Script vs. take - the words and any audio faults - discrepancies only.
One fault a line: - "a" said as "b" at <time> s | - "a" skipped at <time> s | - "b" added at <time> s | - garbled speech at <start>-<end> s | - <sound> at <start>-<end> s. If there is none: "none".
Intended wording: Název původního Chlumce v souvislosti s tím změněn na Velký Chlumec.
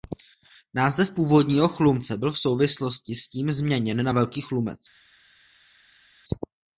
- "byl" added at 2.2 s